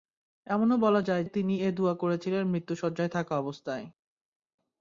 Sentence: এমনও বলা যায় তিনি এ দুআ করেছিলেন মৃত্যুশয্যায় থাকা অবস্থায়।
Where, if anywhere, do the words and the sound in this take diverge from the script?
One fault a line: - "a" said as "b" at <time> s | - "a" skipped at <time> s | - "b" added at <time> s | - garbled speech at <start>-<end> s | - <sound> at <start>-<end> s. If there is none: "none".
none